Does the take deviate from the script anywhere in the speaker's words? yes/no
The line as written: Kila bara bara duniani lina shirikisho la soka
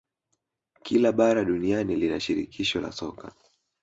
yes